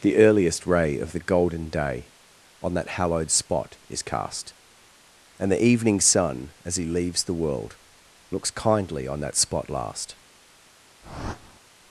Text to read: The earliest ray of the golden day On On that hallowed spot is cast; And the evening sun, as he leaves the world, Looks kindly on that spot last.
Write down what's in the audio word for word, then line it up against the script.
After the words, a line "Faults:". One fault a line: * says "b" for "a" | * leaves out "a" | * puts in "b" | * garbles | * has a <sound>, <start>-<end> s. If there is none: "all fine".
The earliest ray of the golden day On that hallowed spot is cast; And the evening sun, as he leaves the world, Looks kindly on that spot last.
Faults:
* leaves out "On"
* has a whoosh, 11.0-11.6 s